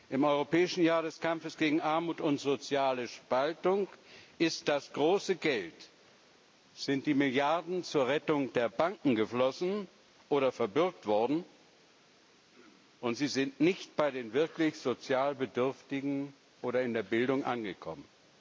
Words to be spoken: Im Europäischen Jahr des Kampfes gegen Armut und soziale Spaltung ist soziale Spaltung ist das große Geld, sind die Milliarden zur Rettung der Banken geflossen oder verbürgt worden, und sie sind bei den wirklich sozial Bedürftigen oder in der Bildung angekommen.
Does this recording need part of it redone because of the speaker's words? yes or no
yes